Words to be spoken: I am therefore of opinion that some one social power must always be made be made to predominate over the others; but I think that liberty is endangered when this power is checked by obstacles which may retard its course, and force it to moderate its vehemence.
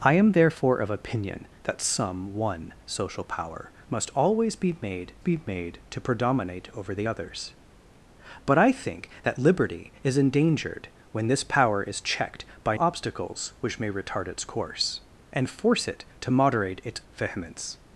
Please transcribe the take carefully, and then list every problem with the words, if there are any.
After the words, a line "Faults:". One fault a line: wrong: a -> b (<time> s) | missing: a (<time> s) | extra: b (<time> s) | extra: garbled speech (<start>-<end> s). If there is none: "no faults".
I am therefore of opinion that some one social power must always be made be made to predominate over the others; but I think that liberty is endangered when this power is checked by obstacles which may retard its course, and force it to moderate its vehemence.
Faults:
no faults